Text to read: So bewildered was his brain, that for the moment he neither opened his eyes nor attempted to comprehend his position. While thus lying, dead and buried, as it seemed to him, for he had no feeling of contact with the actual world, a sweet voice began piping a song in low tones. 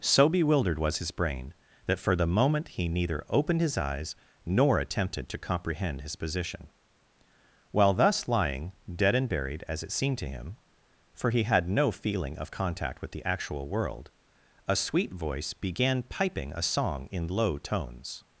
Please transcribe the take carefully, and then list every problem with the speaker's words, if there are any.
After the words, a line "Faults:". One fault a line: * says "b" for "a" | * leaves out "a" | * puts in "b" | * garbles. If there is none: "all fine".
So bewildered was his brain, that for the moment he neither opened his eyes nor attempted to comprehend his position. While thus lying, dead and buried, as it seemed to him, for he had no feeling of contact with the actual world, a sweet voice began piping a song in low tones.
Faults:
all fine